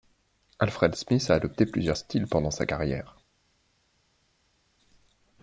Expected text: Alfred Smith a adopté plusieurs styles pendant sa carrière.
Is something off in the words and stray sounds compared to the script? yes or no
no